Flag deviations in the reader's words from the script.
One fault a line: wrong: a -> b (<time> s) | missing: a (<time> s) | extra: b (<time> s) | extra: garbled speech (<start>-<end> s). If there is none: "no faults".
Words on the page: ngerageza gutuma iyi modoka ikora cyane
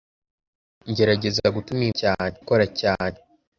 wrong: modoka -> cyane (2.0 s)